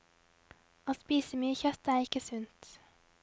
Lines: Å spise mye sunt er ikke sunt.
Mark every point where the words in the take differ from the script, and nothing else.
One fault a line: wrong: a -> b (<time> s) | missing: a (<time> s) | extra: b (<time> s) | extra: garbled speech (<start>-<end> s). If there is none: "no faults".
wrong: sunt -> kjøtt (1.6 s)